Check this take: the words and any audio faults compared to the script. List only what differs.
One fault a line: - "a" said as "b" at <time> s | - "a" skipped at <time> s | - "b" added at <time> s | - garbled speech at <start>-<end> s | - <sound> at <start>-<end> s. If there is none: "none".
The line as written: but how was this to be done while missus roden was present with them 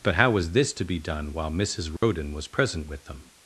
- dropout at 2.0-2.0 s